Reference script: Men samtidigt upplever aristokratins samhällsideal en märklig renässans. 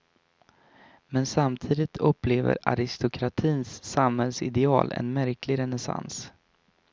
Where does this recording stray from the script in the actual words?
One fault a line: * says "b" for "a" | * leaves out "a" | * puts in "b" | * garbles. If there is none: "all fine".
all fine